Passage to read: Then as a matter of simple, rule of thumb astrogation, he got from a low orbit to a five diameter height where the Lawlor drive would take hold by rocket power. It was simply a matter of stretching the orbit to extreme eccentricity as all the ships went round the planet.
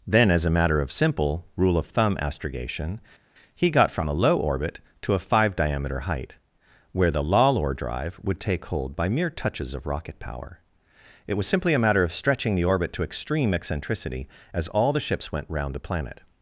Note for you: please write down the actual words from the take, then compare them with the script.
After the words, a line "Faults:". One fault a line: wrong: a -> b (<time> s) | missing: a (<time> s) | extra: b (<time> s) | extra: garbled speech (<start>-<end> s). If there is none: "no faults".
Then as a matter of simple, rule of thumb astrogation, he got from a low orbit to a five diameter height where the Lawlor drive would take hold by mere touches of rocket power. It was simply a matter of stretching the orbit to extreme eccentricity as all the ships went round the planet.
Faults:
extra: mere touches of (9.1 s)